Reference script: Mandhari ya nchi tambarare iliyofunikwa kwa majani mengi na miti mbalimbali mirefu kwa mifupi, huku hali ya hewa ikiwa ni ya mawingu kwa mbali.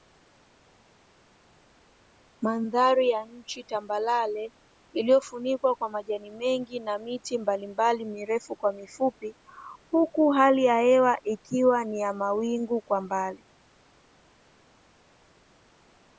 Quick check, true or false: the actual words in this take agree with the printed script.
true